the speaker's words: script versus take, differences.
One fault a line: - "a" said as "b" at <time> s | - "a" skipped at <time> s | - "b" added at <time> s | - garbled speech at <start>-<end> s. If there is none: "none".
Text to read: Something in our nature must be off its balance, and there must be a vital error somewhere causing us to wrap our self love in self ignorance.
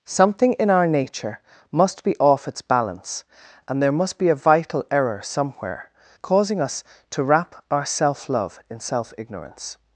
none